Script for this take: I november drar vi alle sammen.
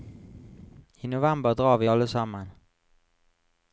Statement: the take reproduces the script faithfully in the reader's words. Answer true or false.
true